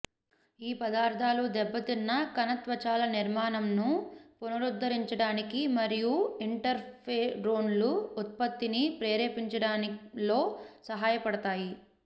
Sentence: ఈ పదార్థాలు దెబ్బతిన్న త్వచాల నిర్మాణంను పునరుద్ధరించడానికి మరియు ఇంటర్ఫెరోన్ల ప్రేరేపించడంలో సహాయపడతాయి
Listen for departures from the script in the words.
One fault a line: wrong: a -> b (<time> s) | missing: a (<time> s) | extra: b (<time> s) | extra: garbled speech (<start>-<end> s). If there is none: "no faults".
extra: కణ (2.4 s)
extra: ఉత్పత్తిని (8.2 s)